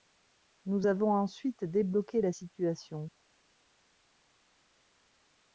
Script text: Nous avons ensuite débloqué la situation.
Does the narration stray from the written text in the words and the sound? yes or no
no